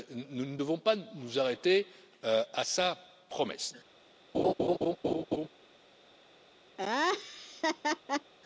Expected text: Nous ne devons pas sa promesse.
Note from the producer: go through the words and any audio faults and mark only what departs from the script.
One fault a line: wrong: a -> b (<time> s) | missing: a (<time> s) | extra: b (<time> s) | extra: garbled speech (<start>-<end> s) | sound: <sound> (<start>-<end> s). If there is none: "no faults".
extra: nous arrêter à (1.1 s)
sound: laugh (4.3-5.5 s)
sound: laugh (6.8-8.3 s)